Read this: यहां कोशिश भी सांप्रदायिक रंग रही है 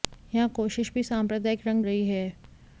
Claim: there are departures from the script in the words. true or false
false